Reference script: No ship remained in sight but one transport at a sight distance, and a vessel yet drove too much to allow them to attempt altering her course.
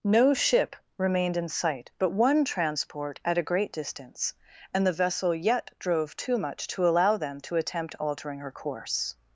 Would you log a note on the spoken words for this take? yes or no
yes